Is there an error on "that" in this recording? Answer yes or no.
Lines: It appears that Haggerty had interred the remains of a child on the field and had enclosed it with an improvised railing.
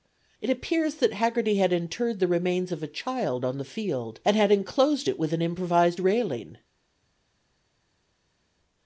no